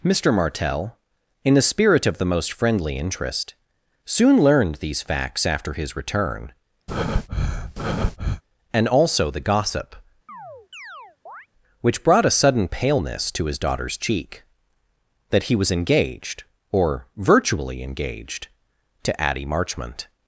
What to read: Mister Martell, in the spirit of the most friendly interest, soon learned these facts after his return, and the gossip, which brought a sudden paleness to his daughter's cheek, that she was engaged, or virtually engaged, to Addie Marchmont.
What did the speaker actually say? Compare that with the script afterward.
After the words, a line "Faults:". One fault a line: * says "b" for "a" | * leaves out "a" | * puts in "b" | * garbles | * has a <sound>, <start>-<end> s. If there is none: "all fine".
Mister Martell, in the spirit of the most friendly interest, soon learned these facts after his return, and also the gossip, which brought a sudden paleness to his daughter's cheek, that he was engaged, or virtually engaged, to Addie Marchmont.
Faults:
* has a breath, 6.9-8.4 s
* puts in "also"
* has a chirp, 10.3-11.5 s
* says "he" for "she"